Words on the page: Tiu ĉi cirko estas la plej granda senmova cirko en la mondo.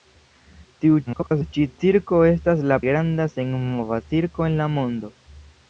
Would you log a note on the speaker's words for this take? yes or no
yes